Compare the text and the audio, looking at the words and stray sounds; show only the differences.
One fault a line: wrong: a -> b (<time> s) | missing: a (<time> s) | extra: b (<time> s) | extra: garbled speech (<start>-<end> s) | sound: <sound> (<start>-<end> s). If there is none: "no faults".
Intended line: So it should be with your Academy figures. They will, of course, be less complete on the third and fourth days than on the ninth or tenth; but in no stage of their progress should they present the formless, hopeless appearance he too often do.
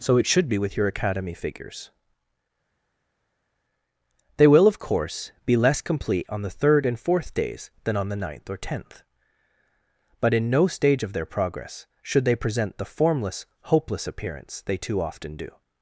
wrong: he -> they (14.6 s)